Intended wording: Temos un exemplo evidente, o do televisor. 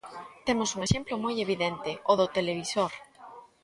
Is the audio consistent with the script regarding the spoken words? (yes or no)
no